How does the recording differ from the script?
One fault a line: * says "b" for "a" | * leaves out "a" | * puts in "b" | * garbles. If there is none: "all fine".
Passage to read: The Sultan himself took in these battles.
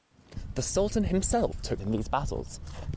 all fine